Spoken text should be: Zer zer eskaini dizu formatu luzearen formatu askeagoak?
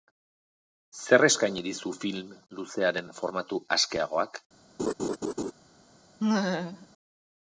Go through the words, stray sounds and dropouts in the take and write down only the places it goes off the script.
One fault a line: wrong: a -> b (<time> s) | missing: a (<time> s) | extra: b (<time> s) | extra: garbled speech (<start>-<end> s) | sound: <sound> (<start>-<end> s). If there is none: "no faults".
missing: zer (1.2 s)
wrong: formatu -> film (2.1 s)
sound: laugh (4.8-5.5 s)
sound: laugh (6.2-6.9 s)